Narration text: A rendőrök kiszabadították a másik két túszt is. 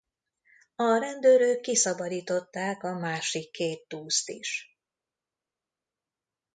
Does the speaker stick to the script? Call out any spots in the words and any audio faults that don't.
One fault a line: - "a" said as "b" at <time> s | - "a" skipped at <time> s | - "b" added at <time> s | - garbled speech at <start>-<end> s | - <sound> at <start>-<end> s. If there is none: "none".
none